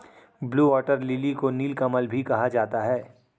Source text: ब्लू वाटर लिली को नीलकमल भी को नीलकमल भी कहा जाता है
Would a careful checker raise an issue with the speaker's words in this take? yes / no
yes